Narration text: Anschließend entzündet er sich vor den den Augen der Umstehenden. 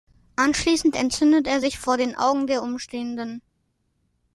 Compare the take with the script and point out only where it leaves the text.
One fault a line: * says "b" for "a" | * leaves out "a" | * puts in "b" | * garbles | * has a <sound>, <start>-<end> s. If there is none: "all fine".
* leaves out "den"